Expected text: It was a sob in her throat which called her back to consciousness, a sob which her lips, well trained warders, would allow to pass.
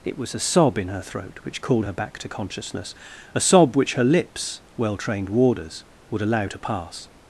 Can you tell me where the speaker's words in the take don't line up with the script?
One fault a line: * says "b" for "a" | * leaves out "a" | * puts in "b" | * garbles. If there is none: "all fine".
all fine